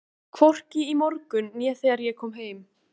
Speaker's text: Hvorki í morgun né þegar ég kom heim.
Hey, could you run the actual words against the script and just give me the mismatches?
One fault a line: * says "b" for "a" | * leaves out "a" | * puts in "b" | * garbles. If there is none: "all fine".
all fine